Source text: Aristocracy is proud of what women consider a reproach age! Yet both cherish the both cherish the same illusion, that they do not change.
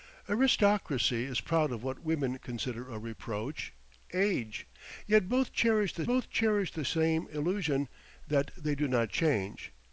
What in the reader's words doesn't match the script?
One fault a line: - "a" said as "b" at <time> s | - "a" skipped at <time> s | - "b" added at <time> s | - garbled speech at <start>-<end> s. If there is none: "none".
none